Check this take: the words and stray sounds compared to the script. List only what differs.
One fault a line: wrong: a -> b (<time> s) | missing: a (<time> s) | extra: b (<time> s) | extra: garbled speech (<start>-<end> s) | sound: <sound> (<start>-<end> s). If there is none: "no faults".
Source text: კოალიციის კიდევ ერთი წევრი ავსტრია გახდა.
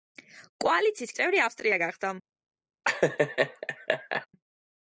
missing: კიდევ ერთი (1.1 s)
sound: laugh (2.8-4.3 s)